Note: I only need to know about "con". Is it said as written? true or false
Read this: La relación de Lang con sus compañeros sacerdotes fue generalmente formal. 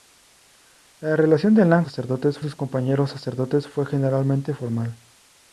false